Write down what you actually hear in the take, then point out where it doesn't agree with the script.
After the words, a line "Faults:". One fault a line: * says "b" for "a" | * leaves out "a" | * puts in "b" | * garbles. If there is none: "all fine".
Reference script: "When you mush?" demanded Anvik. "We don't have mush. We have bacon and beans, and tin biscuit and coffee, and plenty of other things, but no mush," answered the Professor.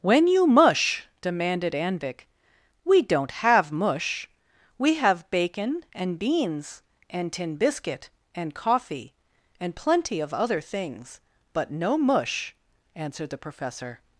"When you mush?" demanded Anvik. "We don't have mush. We have bacon and beans, and tin biscuit and coffee, and plenty of other things, but no mush," answered the Professor.
Faults:
all fine